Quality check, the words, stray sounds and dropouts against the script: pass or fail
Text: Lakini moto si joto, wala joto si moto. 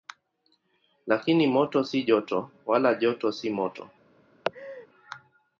fail